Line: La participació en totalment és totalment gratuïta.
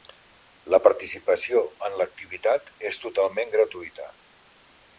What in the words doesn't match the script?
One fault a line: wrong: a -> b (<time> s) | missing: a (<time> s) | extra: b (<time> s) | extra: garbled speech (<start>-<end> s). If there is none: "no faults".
wrong: totalment -> l'activitat (2.0 s)